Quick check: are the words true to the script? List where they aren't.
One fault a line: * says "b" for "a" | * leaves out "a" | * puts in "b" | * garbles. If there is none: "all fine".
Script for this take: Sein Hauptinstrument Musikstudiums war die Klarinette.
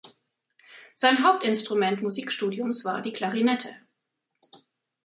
all fine